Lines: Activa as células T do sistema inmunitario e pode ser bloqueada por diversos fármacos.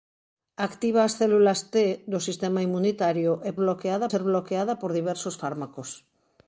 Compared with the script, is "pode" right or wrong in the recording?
wrong